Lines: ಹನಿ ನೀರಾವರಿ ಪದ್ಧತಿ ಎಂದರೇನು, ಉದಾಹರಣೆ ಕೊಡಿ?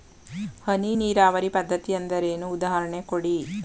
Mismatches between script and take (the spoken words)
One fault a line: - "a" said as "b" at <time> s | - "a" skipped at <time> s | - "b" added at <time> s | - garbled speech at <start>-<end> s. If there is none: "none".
none